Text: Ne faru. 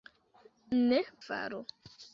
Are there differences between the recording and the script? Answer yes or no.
no